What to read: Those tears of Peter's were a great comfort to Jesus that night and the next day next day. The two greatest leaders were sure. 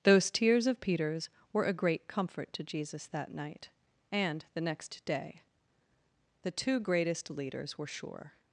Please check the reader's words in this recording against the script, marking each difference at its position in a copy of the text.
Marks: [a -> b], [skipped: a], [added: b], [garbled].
Those tears of Peter's were a great comfort to Jesus that night and the next day [skipped: next day.] The two greatest leaders were sure.